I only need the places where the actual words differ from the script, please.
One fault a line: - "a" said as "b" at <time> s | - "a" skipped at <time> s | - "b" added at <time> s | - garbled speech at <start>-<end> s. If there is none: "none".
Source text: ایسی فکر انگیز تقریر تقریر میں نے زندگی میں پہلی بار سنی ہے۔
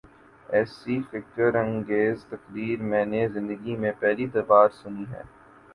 - "تقریر" skipped at 2.8 s